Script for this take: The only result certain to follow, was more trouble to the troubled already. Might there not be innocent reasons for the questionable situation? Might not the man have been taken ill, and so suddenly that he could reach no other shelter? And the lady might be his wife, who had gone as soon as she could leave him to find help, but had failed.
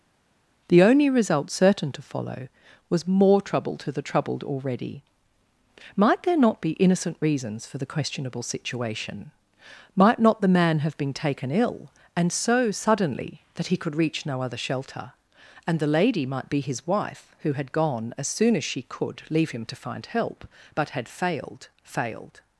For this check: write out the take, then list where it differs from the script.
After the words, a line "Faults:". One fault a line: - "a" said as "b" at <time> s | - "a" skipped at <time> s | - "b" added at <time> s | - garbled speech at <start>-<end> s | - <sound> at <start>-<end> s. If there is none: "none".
The only result certain to follow, was more trouble to the troubled already. Might there not be innocent reasons for the questionable situation? Might not the man have been taken ill, and so suddenly that he could reach no other shelter? And the lady might be his wife, who had gone as soon as she could leave him to find help, but had failed failed.
Faults:
- "failed" added at 21.8 s